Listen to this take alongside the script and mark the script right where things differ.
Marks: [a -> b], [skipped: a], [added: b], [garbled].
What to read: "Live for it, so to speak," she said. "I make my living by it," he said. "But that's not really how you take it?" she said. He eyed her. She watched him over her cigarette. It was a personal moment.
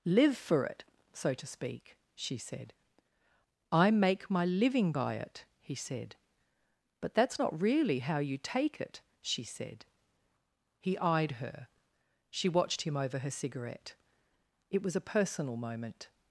"Live for it, so to speak," she said. "I make my living by it," he said. "But that's not really how you take it?" she said. He eyed her. She watched him over her cigarette. It was a personal moment.